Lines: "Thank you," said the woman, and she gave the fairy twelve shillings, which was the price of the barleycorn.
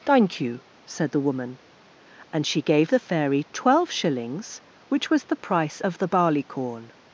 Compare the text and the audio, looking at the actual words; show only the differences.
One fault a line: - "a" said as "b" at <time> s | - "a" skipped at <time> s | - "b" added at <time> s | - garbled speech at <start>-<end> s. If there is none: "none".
none